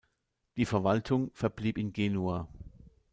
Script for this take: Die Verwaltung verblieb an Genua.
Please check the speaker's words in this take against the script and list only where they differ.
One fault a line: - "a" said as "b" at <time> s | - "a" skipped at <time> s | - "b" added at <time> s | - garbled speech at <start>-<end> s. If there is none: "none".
- "an" said as "in" at 1.8 s